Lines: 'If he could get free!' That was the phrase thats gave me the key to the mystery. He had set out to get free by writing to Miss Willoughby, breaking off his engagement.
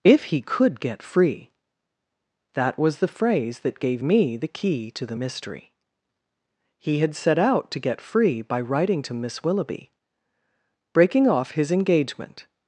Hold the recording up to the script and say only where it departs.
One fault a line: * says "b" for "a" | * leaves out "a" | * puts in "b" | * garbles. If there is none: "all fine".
* says "that" for "thats"